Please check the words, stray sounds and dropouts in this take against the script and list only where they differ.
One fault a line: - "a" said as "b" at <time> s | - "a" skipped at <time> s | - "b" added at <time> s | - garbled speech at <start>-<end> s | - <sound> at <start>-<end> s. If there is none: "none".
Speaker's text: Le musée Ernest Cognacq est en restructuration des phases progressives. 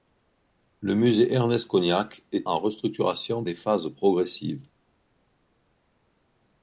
none